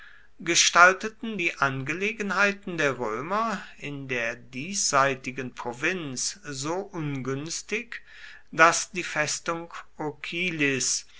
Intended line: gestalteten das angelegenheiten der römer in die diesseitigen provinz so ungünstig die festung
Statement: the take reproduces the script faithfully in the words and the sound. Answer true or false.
false